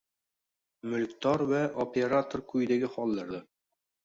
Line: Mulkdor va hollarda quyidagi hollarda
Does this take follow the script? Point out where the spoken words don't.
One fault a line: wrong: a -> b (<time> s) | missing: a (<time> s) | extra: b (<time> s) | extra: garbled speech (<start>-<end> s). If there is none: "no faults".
wrong: hollarda -> operator (1.9 s)